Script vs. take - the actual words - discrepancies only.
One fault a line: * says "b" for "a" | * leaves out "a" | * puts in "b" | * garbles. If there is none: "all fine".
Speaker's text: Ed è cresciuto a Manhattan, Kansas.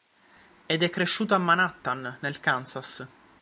* puts in "nel"